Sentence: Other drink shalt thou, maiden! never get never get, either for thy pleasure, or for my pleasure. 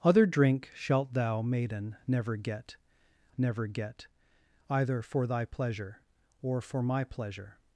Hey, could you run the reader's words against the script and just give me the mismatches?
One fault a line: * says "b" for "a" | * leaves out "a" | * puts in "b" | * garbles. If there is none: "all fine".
all fine